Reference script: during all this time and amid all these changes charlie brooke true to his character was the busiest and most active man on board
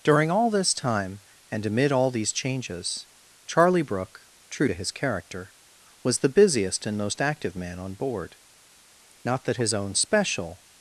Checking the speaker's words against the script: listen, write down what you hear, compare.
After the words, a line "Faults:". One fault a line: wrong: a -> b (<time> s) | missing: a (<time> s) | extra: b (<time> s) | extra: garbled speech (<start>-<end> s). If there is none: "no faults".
during all this time and amid all these changes charlie brooke true to his character was the busiest and most active man on board not that his own special
Faults:
extra: not that his own special (9.2 s)